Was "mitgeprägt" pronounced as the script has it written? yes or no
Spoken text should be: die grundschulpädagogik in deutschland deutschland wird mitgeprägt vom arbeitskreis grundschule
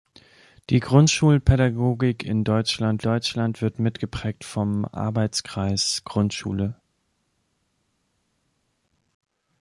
yes